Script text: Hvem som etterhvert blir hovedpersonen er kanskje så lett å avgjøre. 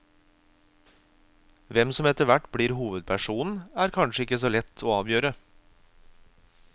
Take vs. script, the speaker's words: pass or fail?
fail